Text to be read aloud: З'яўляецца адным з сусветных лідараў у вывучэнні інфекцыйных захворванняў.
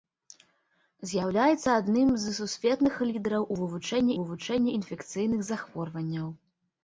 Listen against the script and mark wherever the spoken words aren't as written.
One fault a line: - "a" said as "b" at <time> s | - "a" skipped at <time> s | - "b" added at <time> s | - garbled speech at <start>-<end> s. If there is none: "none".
- "вывучэнні" added at 4.2 s